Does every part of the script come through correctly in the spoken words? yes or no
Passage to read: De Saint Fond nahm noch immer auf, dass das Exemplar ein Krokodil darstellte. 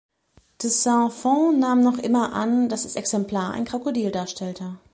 no